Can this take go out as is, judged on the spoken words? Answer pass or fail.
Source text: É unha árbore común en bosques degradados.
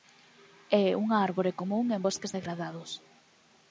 pass